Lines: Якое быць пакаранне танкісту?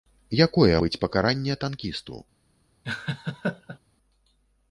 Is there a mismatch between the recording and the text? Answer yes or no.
no